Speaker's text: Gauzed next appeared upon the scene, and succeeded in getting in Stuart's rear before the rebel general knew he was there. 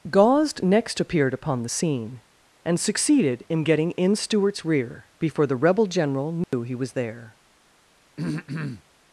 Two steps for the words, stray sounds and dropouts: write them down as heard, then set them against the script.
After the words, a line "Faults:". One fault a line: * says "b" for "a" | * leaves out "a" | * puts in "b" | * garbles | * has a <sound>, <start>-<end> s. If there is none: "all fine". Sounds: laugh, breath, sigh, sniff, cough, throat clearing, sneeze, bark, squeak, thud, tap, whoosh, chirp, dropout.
Gauzed next appeared upon the scene, and succeeded in getting in Stuart's rear before the rebel general knew he was there.
Faults:
* has a dropout, 6.4-6.5 s
* has a throat clearing, 8.2-8.8 s